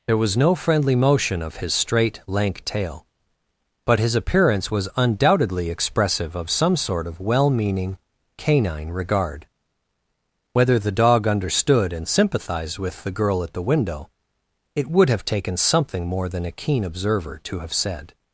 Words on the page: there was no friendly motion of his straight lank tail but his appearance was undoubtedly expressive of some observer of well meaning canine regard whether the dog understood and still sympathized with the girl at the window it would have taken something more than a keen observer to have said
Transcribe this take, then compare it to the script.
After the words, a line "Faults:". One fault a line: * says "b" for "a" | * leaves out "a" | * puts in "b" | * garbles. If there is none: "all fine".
there was no friendly motion of his straight lank tail but his appearance was undoubtedly expressive of some sort of well meaning canine regard whether the dog understood and sympathized with the girl at the window it would have taken something more than a keen observer to have said
Faults:
* says "sort" for "observer"
* leaves out "still"